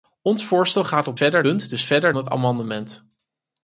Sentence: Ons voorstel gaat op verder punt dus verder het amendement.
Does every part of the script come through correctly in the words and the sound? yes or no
yes